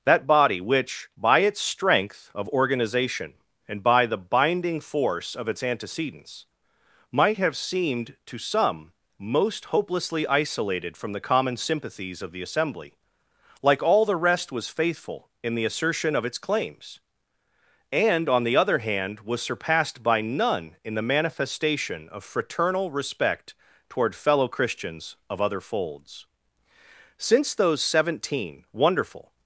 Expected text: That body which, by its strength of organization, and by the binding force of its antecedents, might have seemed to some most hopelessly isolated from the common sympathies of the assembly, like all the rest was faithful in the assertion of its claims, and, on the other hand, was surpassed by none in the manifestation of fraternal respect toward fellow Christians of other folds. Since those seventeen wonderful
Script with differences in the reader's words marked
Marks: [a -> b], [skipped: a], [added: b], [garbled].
That body which, by its strength of organization, and by the binding force of its antecedents, might have seemed to some most hopelessly isolated from the common sympathies of the assembly, like all the rest was faithful in the assertion of its claims, and, on the other hand, was surpassed by none in the manifestation of fraternal respect toward fellow Christians of other folds. Since those seventeen wonderful